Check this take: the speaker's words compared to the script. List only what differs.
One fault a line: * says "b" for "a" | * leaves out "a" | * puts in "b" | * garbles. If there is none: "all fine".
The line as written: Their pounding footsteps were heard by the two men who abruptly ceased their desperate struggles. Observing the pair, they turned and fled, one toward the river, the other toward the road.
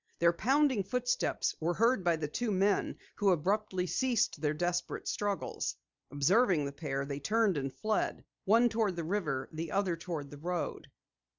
all fine